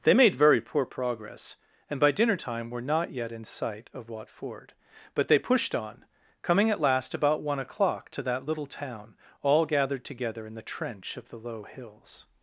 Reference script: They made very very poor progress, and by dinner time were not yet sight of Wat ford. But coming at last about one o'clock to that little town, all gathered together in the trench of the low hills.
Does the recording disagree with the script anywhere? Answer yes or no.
yes